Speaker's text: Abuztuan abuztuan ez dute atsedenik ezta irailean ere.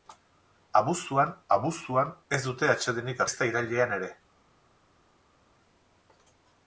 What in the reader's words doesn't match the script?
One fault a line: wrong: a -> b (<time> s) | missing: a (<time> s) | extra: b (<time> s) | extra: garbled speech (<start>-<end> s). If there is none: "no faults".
no faults